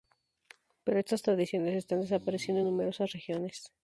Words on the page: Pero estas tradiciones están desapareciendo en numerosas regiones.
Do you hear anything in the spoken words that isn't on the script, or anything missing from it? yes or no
no